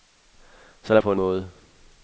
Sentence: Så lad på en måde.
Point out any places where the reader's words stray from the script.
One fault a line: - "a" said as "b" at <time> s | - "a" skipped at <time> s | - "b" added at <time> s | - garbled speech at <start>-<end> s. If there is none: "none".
none